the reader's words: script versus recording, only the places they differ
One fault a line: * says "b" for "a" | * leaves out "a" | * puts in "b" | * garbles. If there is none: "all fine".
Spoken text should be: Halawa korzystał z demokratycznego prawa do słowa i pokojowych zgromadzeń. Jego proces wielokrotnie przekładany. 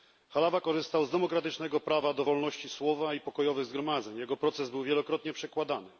* puts in "wolności"
* puts in "był"